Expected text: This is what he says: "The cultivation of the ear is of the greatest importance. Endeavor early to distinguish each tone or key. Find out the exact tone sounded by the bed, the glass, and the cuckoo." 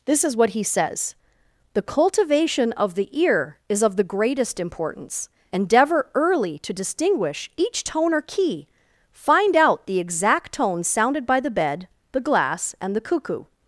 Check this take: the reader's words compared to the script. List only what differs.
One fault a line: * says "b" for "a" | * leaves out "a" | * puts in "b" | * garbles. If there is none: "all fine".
all fine